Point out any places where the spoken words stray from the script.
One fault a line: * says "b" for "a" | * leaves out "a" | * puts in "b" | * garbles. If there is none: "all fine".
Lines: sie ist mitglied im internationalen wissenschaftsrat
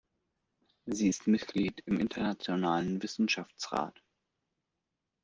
all fine